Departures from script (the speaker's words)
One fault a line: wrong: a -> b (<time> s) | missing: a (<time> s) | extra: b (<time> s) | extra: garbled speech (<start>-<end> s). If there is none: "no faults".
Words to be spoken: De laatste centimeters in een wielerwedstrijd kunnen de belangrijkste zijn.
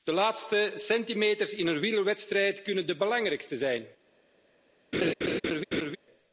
no faults